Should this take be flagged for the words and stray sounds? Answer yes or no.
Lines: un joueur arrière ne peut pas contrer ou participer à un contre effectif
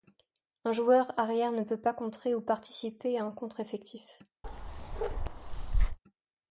yes